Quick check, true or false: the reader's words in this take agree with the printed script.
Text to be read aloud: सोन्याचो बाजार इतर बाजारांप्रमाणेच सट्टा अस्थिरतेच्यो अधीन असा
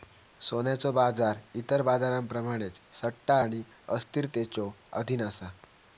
false